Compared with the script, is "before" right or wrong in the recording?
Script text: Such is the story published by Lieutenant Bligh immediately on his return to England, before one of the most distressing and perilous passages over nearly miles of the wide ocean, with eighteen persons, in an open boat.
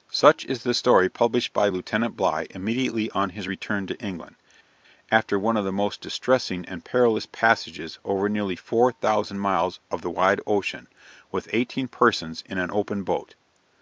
wrong